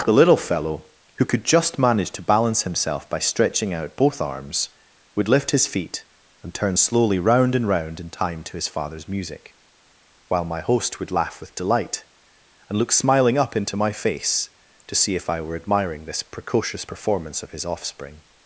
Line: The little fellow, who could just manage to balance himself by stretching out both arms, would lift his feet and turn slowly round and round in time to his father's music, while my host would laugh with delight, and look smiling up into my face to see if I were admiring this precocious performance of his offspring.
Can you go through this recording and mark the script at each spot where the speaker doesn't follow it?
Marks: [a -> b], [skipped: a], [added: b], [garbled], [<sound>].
The little fellow, who could just manage to balance himself by stretching out both arms, would lift his feet and turn slowly round and round in time to his father's music, while my host would laugh with delight, and look smiling up into my face to see if I were admiring this precocious performance of his offspring.